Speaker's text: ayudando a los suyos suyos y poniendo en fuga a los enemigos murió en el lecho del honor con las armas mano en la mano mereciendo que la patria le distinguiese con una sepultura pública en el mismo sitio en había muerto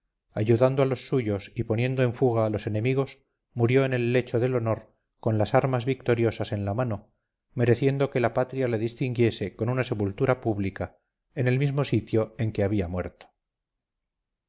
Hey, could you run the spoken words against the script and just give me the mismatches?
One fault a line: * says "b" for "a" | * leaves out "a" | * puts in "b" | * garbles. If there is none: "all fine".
* leaves out "suyos"
* says "victoriosas" for "mano"
* puts in "que"